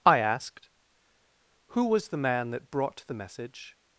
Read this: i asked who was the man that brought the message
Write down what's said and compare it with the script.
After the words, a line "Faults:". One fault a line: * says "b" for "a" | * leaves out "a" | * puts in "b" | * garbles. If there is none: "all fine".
i asked who was the man that brought the message
Faults:
all fine